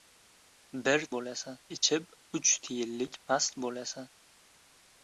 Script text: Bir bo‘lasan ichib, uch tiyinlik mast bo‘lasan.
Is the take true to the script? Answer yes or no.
yes